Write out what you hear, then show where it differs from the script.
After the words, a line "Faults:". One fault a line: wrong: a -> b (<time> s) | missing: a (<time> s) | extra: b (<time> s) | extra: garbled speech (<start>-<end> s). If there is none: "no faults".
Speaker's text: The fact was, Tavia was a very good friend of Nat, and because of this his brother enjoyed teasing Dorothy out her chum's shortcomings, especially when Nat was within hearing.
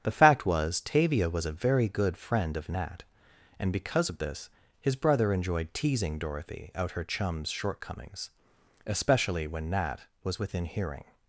The fact was, Tavia was a very good friend of Nat, and because of this his brother enjoyed teasing Dorothy out her chum's shortcomings, especially when Nat was within hearing.
Faults:
no faults